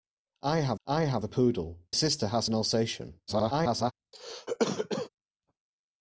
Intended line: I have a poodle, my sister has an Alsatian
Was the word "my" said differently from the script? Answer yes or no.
yes